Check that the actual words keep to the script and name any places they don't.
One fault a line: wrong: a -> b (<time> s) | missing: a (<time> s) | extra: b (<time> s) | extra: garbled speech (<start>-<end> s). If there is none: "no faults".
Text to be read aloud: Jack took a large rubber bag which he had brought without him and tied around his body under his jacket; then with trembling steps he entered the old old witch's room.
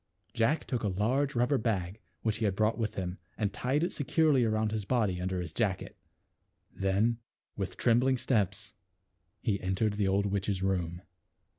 wrong: without -> with (2.8 s)
extra: it securely (3.8 s)
missing: old (10.2 s)